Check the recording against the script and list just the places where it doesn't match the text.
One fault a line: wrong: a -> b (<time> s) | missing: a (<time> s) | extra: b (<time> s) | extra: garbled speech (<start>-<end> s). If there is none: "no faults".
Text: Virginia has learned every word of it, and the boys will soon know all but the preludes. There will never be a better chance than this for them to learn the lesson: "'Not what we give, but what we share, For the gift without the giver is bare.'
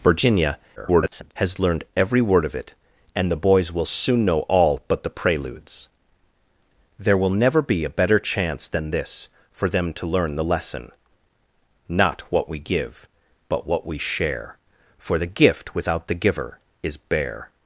extra: garbled speech (0.8-1.3 s)